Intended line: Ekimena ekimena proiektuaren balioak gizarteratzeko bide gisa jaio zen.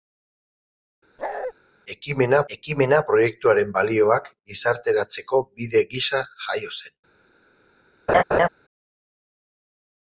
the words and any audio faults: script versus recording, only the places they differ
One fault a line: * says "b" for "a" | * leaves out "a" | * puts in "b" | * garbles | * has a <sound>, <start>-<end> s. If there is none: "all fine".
* has a bark, 1.2-1.5 s
* has a laugh, 8.1-8.5 s